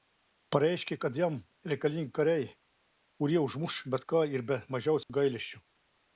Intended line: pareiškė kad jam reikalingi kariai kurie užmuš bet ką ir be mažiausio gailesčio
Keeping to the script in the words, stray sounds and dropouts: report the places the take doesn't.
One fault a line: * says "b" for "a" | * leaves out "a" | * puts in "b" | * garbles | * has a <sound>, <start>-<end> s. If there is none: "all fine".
* has a dropout, 5.0-5.1 s